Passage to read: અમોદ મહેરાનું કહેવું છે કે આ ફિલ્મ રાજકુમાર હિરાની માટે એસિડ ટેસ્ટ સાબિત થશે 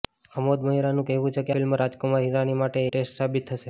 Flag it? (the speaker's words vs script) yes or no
yes